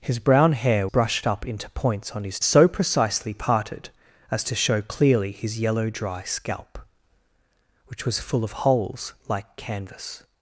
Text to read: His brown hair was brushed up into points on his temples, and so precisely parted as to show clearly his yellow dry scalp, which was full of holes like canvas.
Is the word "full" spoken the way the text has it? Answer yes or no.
yes